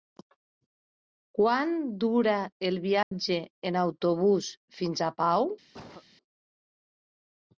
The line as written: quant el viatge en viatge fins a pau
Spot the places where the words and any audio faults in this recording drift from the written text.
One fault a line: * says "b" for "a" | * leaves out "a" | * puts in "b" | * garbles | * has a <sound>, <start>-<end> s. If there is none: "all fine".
* puts in "dura"
* has a dropout, 3.0-3.1 s
* says "autobús" for "viatge"
* has a cough, 5.7-6.0 s